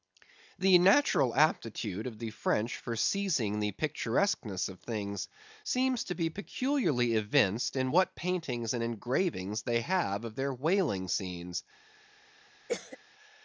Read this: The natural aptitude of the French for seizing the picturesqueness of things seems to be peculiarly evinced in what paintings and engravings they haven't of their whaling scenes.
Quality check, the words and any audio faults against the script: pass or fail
fail